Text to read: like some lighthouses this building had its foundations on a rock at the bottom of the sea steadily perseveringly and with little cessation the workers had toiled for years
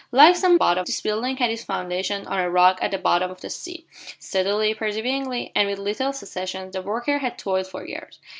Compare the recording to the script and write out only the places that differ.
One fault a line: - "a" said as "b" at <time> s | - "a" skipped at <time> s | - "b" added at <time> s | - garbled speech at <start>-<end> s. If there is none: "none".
- "lighthouses" said as "bottom" at 0.5 s